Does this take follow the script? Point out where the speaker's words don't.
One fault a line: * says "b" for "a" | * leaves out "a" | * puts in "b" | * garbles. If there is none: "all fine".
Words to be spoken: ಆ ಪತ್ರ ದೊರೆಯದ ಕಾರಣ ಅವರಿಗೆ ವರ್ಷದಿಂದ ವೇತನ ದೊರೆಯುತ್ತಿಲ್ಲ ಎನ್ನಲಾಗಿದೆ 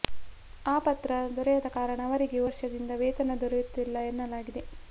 all fine